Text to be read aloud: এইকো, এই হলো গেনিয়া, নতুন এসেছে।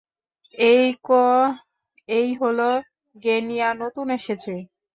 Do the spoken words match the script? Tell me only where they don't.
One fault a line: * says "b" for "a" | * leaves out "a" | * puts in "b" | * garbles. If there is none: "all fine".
all fine